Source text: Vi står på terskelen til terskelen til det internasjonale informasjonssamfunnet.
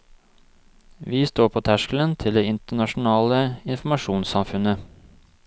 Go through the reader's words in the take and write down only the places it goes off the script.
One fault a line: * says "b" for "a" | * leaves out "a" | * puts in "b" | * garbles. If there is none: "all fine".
* leaves out "terskelen til"